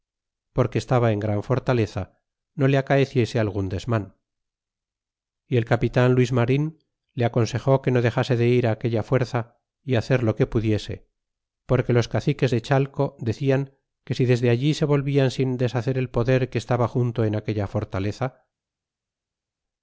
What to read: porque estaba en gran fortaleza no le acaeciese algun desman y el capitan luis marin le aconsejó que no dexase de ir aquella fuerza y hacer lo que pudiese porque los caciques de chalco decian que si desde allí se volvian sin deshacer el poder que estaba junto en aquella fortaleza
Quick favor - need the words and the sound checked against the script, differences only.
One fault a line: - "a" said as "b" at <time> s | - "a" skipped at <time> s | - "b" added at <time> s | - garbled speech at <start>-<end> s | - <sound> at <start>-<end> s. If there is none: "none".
none